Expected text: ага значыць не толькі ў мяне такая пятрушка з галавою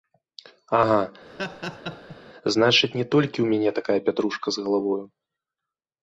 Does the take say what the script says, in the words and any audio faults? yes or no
no